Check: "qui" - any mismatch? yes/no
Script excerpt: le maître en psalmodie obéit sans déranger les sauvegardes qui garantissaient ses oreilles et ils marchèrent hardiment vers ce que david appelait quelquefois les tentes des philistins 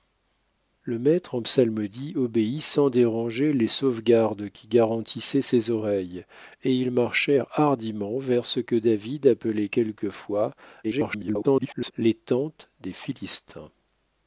no